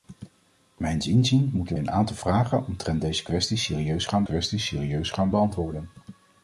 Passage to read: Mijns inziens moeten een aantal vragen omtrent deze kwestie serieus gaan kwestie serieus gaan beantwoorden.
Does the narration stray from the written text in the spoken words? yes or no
no